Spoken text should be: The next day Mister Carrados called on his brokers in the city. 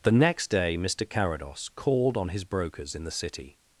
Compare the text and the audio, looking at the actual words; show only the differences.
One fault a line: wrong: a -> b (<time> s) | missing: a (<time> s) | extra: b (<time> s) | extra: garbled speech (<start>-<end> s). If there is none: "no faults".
no faults